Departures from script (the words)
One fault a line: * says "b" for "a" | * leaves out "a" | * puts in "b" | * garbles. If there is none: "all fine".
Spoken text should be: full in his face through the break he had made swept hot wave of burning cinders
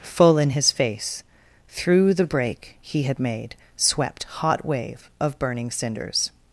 all fine